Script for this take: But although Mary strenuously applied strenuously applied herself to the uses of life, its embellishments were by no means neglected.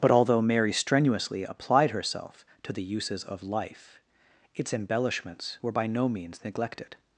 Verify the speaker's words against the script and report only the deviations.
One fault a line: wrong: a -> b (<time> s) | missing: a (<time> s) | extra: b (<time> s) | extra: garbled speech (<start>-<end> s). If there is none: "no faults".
missing: strenuously applied (1.9 s)